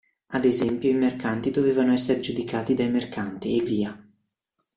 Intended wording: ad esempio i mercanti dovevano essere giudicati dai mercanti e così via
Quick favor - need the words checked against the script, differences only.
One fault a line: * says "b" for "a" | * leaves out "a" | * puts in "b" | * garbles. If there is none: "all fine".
* leaves out "così"